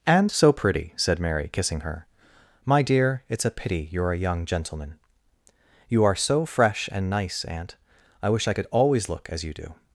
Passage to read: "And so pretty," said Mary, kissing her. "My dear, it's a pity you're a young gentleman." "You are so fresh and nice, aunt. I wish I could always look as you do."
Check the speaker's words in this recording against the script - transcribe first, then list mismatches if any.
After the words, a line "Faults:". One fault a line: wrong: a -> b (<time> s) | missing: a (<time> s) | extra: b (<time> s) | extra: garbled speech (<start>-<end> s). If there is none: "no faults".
"And so pretty," said Mary, kissing her. "My dear, it's a pity you're a young gentleman." "You are so fresh and nice, aunt. I wish I could always look as you do."
Faults:
no faults